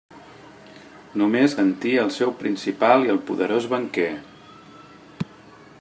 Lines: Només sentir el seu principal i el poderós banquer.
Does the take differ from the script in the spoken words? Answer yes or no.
no